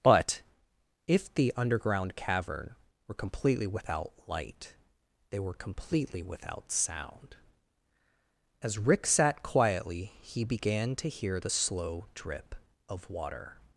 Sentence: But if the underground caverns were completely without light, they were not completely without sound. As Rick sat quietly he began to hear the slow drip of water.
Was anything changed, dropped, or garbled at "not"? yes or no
yes